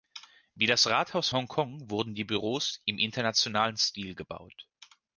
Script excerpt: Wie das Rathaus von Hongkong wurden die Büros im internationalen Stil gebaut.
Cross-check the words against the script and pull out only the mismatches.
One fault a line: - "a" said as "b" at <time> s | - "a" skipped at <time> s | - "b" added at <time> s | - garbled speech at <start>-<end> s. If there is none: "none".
- "von" skipped at 1.3 s